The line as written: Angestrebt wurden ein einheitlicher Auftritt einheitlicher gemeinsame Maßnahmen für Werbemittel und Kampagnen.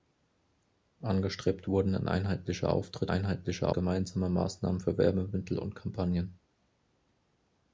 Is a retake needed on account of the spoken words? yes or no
no